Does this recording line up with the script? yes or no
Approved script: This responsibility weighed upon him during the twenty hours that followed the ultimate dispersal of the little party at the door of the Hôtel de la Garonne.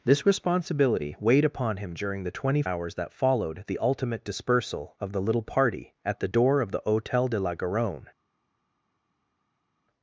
yes